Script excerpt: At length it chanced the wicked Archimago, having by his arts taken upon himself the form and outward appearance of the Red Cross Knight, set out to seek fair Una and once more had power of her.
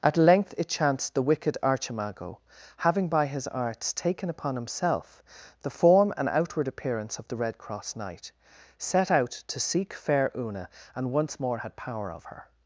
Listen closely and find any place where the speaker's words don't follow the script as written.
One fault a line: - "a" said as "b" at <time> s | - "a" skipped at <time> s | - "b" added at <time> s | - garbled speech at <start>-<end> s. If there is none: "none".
none